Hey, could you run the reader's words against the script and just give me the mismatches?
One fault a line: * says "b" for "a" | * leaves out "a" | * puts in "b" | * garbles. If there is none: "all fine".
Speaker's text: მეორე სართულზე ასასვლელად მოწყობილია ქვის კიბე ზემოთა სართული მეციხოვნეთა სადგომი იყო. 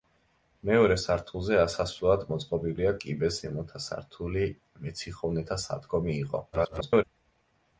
* leaves out "ქვის"
* garbles